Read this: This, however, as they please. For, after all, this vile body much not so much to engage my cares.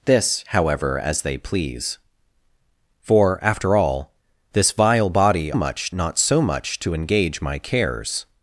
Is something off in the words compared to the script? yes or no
no